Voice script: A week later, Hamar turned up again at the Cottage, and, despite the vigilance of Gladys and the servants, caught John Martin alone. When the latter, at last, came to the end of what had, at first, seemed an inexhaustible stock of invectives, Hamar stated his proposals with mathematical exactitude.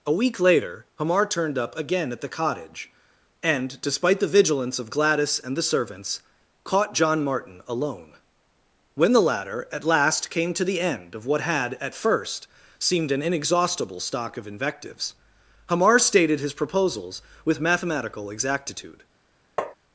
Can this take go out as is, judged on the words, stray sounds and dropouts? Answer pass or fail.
fail